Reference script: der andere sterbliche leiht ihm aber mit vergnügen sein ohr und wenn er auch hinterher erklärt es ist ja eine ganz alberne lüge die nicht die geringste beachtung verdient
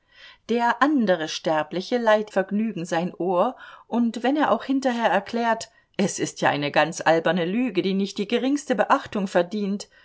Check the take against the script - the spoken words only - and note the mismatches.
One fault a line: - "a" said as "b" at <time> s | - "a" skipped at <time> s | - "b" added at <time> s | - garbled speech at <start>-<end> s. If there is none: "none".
- "ihm aber mit" skipped at 2.3 s